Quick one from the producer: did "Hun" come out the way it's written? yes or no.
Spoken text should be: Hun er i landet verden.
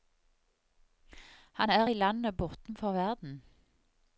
no